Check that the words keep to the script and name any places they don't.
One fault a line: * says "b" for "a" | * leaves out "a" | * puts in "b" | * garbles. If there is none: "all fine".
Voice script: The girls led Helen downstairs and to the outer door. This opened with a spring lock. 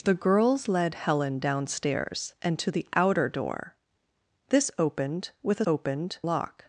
* says "opened" for "spring"